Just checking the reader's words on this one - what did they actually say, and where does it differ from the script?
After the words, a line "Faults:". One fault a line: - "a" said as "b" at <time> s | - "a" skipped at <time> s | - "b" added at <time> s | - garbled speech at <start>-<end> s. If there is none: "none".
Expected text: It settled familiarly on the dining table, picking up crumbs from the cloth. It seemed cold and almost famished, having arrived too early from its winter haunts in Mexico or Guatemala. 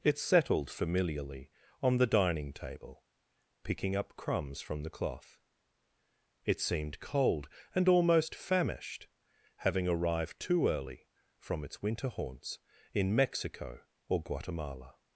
It settled familiarly on the dining table, picking up crumbs from the cloth. It seemed cold and almost famished, having arrived too early from its winter haunts in Mexico or Guatemala.
Faults:
none